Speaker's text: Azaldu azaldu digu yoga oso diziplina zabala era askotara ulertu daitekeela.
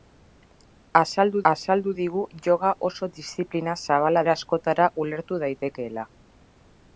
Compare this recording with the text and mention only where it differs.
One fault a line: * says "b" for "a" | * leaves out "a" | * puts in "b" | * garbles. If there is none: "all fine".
all fine